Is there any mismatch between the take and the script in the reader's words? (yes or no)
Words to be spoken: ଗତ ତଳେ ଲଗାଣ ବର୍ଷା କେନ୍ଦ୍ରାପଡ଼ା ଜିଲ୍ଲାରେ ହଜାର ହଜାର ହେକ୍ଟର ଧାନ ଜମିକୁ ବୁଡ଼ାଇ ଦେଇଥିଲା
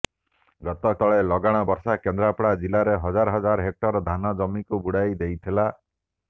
no